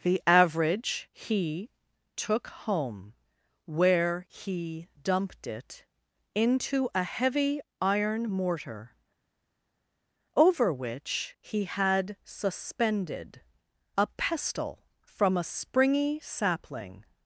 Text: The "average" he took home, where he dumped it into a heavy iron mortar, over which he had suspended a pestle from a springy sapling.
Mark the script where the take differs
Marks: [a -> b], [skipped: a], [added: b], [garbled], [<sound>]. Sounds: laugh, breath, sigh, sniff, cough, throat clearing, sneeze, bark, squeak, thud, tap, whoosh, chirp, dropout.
The "average" he took home, where he dumped it into a heavy iron mortar, over which he had suspended a pestle from a springy sapling.